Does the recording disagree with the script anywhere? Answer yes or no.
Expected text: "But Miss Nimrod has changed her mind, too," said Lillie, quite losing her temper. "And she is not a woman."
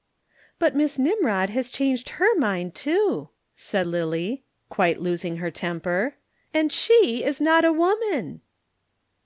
no